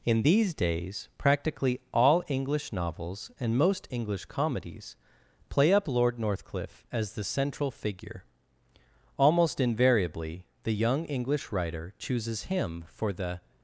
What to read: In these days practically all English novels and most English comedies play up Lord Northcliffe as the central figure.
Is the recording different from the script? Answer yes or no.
yes